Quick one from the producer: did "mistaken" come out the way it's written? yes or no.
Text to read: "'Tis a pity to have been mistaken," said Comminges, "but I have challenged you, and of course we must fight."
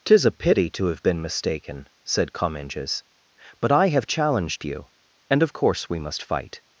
yes